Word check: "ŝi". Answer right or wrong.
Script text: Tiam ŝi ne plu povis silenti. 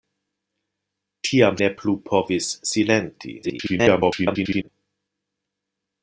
wrong